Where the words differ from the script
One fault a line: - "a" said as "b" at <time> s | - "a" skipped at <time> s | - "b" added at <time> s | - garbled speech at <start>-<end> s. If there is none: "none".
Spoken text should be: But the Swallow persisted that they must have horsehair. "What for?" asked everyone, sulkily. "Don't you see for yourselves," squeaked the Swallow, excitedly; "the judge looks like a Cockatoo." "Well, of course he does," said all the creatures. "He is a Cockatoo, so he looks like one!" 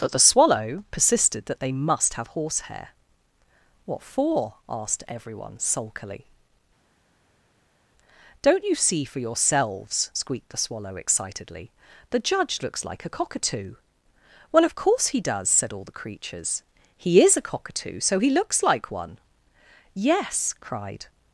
- "Yes cried" added at 19.9 s